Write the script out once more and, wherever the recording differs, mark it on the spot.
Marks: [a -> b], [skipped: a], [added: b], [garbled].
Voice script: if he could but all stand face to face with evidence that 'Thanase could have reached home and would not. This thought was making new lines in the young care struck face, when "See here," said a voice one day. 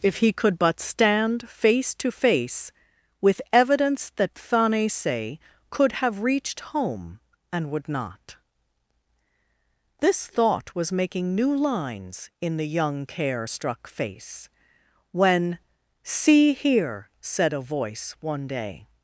if he could but [skipped: all] stand face to face with evidence that 'Thanase could have reached home and would not. This thought was making new lines in the young care struck face, when "See here," said a voice one day.